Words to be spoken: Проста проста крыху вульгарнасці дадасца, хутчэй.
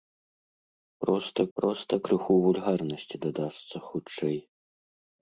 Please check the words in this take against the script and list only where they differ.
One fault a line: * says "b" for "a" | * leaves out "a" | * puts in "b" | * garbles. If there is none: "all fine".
all fine